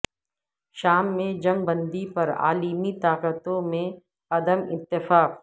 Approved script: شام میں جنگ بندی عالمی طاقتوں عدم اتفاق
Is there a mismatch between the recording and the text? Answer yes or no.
yes